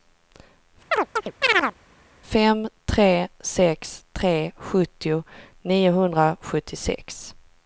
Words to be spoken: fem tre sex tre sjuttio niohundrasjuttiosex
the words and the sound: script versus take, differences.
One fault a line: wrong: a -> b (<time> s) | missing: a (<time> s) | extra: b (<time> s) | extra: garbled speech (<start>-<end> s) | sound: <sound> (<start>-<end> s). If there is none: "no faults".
sound: chirp (0.9-1.7 s)